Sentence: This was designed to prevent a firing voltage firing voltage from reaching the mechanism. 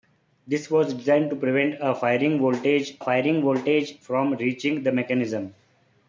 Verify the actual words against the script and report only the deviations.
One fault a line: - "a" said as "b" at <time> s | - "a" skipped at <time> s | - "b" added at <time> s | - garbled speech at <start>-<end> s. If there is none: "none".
none